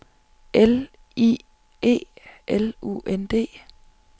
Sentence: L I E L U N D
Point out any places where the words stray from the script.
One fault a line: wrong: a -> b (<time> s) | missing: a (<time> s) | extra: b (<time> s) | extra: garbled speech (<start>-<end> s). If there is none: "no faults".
no faults